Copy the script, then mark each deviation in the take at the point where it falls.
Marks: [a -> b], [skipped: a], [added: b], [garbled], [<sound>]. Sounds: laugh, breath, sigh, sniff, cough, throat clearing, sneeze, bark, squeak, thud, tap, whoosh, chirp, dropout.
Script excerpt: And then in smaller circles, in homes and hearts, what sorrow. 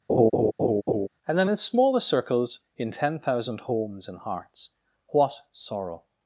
[laugh] And then in smaller circles, in [added: ten thousand] homes and hearts, what sorrow.